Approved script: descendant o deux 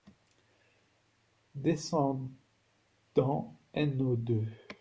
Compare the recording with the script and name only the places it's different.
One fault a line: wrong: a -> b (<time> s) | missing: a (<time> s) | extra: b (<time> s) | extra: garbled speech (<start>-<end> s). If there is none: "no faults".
extra: n (3.7 s)